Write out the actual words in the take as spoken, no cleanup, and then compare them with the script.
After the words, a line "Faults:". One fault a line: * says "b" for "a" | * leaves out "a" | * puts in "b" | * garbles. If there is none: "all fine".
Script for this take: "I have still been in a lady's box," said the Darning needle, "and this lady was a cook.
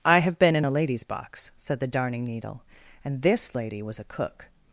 "I have been in a lady's box," said the Darning needle, "and this lady was a cook.
Faults:
* leaves out "still"